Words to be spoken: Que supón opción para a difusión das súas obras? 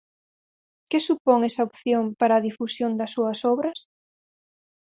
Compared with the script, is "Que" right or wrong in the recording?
right